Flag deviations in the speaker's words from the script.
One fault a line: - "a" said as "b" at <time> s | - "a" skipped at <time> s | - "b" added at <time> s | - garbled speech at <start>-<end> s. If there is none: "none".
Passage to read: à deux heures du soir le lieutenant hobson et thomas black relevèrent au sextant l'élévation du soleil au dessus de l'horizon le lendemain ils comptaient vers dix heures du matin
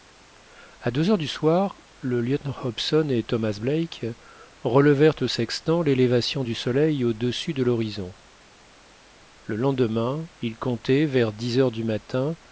none